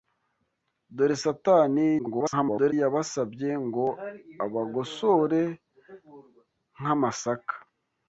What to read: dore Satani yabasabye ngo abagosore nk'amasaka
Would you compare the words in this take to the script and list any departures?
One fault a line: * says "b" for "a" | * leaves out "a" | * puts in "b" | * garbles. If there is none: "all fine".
* garbles